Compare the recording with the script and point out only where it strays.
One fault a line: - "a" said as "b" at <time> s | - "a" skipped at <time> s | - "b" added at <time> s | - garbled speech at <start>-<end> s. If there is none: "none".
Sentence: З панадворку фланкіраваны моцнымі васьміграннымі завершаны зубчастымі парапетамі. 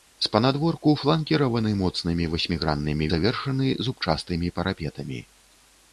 none